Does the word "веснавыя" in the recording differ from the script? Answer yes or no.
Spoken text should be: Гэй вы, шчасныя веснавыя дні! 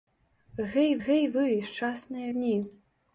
yes